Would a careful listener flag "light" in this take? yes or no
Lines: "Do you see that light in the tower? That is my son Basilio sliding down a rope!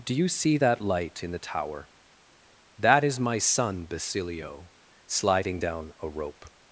no